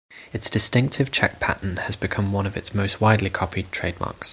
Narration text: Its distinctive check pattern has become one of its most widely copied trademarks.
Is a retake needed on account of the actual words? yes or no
no